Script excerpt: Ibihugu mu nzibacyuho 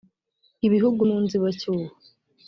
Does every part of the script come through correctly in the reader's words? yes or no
yes